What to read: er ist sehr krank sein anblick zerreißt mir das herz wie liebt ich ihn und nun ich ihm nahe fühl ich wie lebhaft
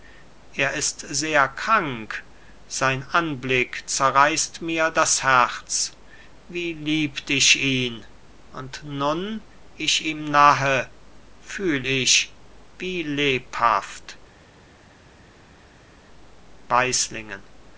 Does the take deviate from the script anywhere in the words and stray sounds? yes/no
no